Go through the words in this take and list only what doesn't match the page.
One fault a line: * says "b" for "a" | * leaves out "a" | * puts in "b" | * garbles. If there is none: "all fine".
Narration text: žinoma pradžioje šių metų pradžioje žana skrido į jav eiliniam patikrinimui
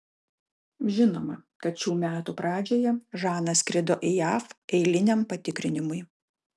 * says "kad" for "pradžioje"